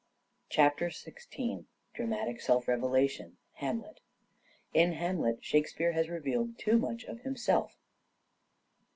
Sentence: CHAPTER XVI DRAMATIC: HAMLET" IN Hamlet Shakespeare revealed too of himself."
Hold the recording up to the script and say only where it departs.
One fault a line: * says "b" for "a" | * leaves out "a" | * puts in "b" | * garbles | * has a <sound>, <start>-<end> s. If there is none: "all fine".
* puts in "SELF REVELATION"
* puts in "has"
* puts in "much"